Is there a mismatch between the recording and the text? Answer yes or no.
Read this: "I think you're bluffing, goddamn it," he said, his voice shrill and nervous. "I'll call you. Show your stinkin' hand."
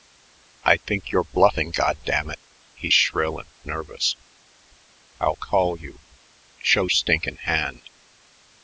yes